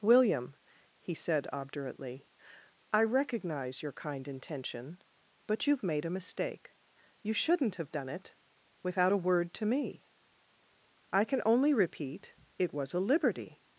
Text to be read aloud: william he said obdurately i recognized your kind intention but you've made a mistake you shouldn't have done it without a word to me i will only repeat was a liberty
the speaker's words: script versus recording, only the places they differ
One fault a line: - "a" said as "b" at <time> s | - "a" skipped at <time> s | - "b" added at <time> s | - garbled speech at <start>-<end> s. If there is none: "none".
- "recognized" said as "recognize" at 3.0 s
- "will" said as "can" at 11.3 s
- "it" added at 12.6 s